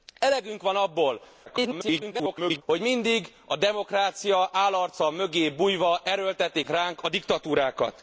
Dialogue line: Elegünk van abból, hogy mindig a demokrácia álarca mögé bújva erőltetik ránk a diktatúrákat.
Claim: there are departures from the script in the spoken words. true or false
true